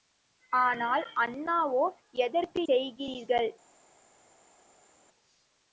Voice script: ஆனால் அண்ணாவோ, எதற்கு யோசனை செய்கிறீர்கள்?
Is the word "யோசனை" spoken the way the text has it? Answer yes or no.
no